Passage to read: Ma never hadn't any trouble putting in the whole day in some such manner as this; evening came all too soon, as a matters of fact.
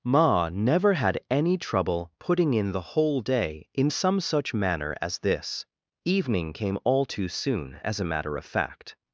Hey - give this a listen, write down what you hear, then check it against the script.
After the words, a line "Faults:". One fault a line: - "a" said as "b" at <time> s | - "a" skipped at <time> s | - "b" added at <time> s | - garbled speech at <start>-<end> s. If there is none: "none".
Ma never had any trouble putting in the whole day in some such manner as this; evening came all too soon, as a matter of fact.
Faults:
- "hadn't" said as "had" at 0.9 s
- "matters" said as "matter" at 8.1 s